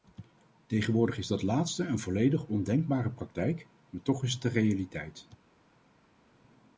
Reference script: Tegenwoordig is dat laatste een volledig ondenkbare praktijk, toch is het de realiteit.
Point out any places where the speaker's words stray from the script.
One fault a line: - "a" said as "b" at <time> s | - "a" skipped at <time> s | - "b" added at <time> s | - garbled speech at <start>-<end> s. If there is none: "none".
- "maar" added at 3.9 s